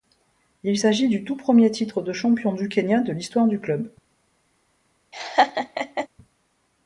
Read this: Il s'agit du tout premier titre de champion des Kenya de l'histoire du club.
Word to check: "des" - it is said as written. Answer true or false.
false